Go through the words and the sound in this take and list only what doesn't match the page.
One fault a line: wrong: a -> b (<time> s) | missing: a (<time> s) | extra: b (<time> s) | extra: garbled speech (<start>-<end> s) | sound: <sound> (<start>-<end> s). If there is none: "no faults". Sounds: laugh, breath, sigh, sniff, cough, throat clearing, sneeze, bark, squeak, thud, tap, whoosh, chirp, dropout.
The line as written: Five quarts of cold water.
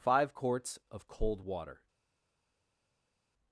no faults